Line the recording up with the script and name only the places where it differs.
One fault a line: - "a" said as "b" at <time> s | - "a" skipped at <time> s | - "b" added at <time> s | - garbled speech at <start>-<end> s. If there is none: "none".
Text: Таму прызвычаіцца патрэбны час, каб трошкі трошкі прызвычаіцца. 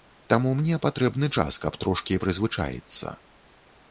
- "прызвычаіцца" said as "мне" at 0.6 s
- "трошкі" skipped at 2.2 s